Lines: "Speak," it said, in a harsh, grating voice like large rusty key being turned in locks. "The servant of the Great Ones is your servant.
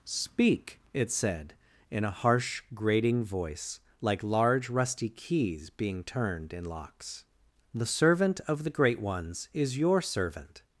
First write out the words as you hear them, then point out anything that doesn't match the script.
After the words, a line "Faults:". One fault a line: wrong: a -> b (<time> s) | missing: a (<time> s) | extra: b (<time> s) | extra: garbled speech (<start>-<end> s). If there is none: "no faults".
"Speak," it said, in a harsh, grating voice like large rusty keys being turned in locks. "The servant of the Great Ones is your servant.
Faults:
wrong: key -> keys (5.1 s)